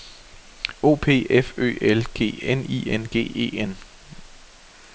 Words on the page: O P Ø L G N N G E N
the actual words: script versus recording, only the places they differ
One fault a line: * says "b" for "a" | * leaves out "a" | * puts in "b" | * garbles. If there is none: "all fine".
* puts in "F"
* puts in "I"